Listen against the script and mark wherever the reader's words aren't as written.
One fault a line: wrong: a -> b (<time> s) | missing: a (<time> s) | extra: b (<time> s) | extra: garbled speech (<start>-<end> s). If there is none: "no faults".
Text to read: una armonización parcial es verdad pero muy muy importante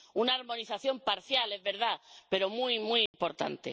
no faults